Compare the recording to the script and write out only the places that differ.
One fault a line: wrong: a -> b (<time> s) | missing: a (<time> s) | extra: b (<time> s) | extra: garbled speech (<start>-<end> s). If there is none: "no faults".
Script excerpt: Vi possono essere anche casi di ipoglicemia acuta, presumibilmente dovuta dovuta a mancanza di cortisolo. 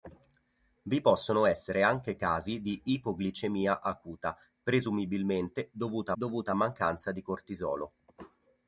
no faults